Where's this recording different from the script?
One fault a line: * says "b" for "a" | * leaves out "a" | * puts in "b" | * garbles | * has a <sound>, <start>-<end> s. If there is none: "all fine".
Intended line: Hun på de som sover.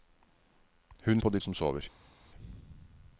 all fine